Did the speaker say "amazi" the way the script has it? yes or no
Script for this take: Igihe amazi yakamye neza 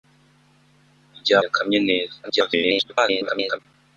no